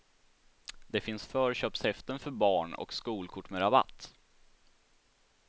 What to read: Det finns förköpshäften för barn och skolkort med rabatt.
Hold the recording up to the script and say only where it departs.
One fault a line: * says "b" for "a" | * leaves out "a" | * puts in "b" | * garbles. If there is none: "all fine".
all fine